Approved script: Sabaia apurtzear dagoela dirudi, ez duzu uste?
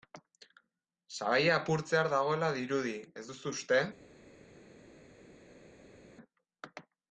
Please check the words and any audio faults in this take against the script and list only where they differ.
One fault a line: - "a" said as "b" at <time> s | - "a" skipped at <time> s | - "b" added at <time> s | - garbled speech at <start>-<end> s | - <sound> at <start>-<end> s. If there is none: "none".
none